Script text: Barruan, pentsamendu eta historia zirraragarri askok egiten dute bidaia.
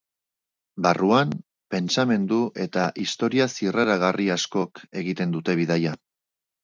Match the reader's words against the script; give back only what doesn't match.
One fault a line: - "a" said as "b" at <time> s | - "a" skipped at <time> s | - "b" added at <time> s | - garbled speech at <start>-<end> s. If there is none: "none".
none